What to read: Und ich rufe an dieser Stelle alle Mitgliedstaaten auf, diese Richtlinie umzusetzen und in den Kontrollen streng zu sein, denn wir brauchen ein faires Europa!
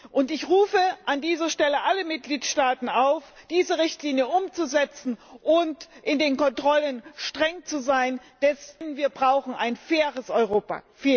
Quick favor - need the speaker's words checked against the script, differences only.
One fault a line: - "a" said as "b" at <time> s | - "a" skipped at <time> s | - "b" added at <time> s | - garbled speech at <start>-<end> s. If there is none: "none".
none